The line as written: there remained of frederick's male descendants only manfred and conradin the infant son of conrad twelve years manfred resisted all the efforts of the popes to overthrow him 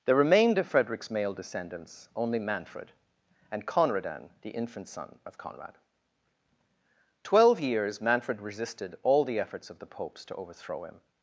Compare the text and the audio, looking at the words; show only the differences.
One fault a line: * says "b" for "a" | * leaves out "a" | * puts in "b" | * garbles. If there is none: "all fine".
all fine